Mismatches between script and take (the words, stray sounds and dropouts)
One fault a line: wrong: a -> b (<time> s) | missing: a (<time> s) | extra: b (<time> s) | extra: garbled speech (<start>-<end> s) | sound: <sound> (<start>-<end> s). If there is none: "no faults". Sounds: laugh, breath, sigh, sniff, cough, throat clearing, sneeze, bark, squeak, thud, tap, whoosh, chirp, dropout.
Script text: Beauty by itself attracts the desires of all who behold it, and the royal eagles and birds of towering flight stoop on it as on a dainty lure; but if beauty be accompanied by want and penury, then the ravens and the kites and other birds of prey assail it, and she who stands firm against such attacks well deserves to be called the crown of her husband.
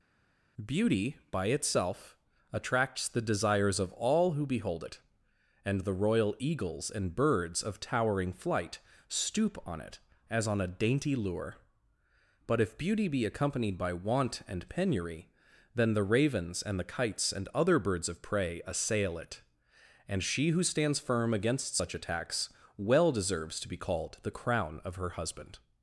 no faults